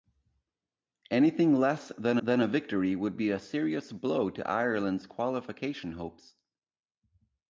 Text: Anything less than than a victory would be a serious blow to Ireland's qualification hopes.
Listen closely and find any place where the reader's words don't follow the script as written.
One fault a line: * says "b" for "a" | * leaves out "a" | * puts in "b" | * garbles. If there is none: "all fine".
all fine